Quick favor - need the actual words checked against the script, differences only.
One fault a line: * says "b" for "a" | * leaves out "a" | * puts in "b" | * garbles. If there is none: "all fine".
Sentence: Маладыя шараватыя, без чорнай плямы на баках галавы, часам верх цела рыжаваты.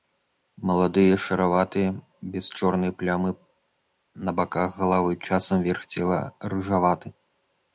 all fine